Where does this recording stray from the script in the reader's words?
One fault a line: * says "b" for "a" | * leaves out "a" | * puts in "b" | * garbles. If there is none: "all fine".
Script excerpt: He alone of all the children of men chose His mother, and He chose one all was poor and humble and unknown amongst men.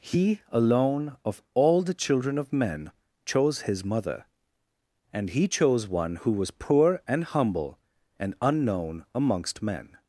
* says "who" for "all"